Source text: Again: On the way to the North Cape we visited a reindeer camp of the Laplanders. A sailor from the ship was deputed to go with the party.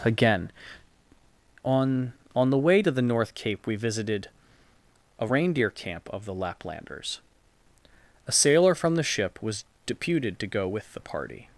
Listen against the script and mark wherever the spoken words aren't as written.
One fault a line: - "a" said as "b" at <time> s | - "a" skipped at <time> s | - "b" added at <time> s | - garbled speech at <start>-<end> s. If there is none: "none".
- "On" added at 2.4 s